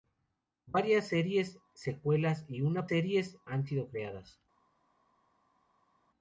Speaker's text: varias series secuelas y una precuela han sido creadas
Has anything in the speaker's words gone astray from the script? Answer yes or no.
yes